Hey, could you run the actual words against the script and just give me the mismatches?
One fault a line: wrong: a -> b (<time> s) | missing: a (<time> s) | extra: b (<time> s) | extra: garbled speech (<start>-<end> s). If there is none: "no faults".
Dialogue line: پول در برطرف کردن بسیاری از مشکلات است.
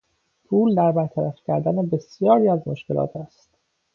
no faults